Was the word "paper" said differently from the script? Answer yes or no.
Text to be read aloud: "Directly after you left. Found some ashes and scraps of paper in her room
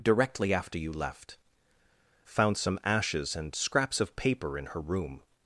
no